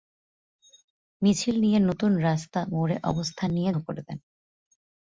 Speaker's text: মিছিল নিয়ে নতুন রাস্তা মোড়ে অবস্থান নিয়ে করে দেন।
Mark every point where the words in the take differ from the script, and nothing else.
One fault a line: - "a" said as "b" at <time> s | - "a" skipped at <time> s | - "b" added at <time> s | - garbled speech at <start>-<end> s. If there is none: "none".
none